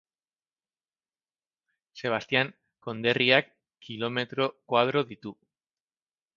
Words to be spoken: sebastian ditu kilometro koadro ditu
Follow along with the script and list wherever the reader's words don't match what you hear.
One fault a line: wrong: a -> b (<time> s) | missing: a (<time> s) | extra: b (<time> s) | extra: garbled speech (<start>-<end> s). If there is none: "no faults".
wrong: ditu -> konderriak (2.9 s)